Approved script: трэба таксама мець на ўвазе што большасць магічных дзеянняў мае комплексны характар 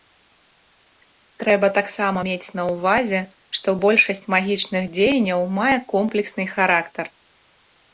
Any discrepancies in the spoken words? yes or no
no